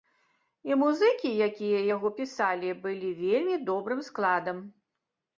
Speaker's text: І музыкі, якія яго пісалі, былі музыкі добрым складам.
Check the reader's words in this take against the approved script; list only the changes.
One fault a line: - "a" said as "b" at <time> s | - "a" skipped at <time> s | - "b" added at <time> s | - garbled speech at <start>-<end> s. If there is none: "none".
- "музыкі" said as "вельмі" at 3.2 s